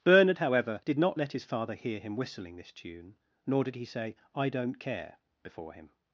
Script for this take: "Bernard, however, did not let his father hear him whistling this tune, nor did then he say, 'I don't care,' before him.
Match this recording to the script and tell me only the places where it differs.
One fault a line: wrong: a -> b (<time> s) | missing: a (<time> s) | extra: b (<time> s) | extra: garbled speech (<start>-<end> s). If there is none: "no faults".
missing: then (3.7 s)